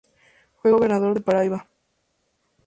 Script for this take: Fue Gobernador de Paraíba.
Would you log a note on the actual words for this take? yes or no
no